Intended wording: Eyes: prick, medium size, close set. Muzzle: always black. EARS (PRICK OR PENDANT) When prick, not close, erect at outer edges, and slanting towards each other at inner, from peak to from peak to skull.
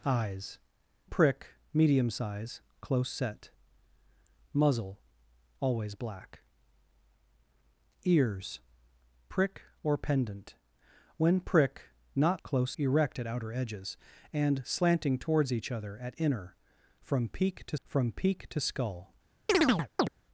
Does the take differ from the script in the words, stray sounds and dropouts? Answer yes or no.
yes